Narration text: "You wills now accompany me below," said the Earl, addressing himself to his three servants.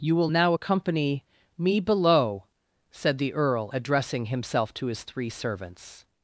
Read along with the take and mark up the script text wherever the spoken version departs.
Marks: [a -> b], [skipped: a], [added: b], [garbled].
"You [wills -> will] now accompany me below," said the Earl, addressing himself to his three servants.